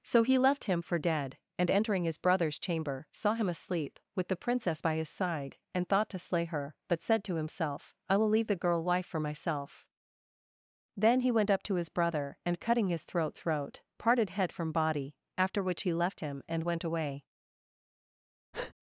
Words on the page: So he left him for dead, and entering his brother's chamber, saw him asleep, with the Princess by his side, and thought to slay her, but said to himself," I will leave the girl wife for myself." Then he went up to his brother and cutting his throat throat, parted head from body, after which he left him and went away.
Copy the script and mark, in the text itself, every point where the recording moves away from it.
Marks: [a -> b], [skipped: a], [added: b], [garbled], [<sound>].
So he left him for dead, and entering his brother's chamber, saw him asleep, with the Princess by his side, and thought to slay her, but said to himself," I will leave the girl wife for myself." Then he went up to his brother and cutting his throat throat, parted head from body, after which he left him and went away. [breath]